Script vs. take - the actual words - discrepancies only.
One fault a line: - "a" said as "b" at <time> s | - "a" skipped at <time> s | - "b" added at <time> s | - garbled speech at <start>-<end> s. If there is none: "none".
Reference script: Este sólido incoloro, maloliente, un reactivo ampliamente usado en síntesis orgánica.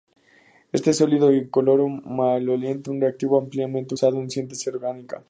none